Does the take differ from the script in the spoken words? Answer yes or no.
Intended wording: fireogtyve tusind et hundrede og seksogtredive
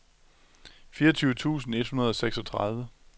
no